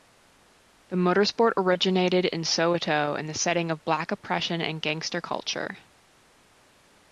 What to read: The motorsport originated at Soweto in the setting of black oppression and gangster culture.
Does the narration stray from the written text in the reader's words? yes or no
yes